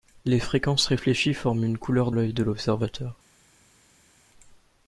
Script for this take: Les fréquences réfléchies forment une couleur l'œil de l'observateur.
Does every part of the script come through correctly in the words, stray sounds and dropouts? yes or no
yes